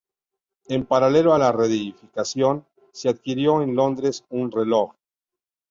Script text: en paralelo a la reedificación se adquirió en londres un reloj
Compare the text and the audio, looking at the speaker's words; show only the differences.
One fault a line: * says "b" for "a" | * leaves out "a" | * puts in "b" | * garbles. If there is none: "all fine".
all fine